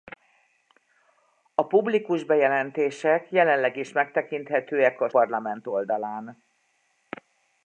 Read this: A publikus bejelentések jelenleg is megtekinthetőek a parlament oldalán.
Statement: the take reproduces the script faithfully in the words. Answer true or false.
true